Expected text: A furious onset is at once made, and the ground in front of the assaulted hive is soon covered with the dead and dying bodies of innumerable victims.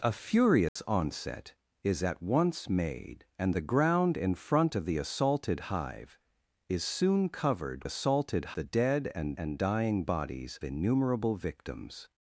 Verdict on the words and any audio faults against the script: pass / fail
fail